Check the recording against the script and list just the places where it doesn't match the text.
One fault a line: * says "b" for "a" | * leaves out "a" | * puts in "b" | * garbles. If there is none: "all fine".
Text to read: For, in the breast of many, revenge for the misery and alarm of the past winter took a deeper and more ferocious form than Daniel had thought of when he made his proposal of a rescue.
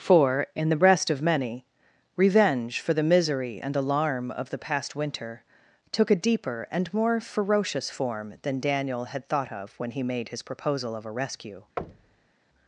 all fine